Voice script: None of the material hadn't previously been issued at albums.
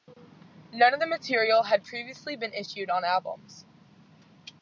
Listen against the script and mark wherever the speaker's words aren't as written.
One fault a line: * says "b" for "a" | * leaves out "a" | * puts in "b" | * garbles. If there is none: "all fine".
* says "had" for "hadn't"
* says "on" for "at"